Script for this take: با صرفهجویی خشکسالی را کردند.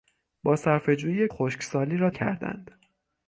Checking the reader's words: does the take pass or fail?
pass